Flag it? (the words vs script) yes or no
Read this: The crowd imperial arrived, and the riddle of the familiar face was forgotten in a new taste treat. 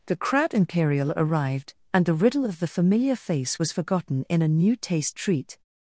no